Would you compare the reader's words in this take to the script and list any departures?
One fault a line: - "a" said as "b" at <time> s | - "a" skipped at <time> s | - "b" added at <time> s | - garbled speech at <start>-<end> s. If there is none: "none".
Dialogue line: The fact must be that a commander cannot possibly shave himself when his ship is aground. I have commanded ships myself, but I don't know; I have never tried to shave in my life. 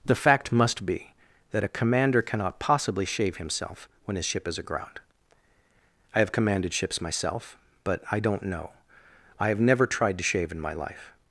none